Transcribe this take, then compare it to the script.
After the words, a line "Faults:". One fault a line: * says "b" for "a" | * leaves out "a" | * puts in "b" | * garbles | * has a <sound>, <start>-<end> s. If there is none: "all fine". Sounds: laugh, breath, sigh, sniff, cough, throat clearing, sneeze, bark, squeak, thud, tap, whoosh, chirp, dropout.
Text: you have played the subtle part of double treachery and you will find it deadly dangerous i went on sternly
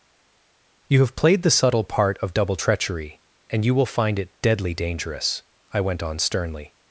you have played the subtle part of double treachery and you will find it deadly dangerous i went on sternly
Faults:
all fine